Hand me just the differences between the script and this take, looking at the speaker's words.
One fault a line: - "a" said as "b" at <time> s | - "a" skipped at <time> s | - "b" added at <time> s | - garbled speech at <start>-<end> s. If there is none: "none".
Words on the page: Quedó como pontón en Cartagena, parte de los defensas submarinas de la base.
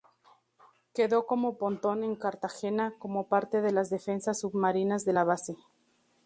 - "como" added at 3.0 s
- "los" said as "las" at 3.7 s